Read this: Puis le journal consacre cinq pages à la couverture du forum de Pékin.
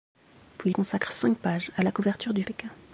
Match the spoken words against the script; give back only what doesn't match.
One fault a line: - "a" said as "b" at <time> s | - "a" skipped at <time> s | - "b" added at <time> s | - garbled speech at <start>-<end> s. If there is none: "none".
- "le journal" skipped at 0.7 s
- "forum de" skipped at 2.4 s